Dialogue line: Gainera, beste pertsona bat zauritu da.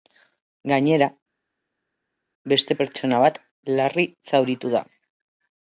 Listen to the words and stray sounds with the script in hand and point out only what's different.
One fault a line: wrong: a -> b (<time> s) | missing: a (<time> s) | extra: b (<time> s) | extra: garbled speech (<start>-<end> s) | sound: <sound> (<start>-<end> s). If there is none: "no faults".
extra: larri (3.8 s)